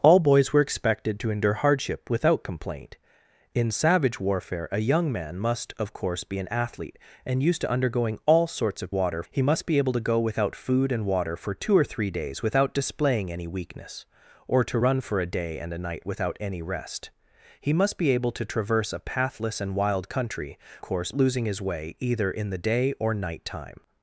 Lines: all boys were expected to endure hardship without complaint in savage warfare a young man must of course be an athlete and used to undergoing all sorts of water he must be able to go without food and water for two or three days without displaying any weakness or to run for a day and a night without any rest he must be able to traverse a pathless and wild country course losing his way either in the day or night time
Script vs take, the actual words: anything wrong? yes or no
no